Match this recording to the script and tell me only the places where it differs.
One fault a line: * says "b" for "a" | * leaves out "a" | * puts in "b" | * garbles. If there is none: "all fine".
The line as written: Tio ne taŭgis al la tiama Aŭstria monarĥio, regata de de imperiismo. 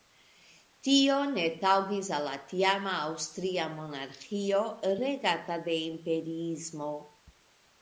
* leaves out "de"